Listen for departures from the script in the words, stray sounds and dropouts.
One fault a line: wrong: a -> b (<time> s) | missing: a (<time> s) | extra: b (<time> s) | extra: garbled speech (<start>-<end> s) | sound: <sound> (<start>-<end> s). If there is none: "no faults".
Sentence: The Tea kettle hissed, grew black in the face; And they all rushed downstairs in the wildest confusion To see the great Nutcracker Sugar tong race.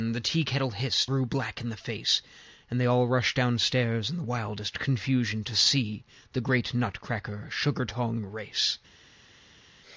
no faults